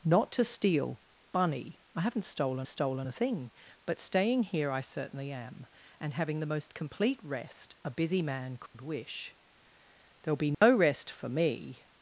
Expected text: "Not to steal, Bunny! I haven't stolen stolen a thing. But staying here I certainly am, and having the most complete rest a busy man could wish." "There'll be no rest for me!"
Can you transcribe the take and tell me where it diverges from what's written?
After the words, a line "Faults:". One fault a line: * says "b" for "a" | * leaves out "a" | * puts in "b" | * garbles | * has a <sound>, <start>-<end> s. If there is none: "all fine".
"Not to steal, Bunny! I haven't stolen stolen a thing. But staying here I certainly am, and having the most complete rest a busy man could wish." "There'll be no rest for me!"
Faults:
* has a dropout, 8.7-8.7 s
* has a dropout, 10.5-10.6 s